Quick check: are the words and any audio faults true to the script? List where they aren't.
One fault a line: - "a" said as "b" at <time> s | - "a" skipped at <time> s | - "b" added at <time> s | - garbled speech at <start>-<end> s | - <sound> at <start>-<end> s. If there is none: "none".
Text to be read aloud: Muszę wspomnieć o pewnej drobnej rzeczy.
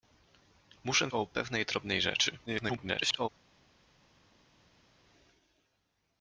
- "wspomnieć" skipped at 1.1 s
- garbled speech at 2.5-3.3 s